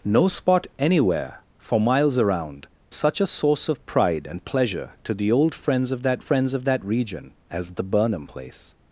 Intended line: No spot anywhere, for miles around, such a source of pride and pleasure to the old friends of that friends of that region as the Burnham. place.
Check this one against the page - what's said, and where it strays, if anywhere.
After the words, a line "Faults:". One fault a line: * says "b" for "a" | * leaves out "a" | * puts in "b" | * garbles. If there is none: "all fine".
No spot anywhere, for miles around, such a source of pride and pleasure to the old friends of that friends of that region as the Burnham. place.
Faults:
all fine